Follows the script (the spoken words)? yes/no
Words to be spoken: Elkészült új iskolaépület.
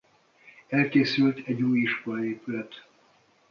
no